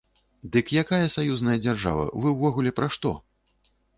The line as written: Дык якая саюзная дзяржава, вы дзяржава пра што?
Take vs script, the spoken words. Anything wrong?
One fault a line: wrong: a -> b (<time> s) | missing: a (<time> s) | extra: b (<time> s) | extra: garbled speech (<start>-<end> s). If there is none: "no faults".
wrong: дзяржава -> ўвогуле (2.4 s)